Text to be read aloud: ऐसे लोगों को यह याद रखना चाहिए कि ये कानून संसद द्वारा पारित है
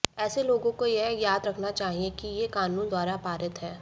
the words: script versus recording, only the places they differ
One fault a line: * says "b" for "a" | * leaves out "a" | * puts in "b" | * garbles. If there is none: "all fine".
* leaves out "संसद"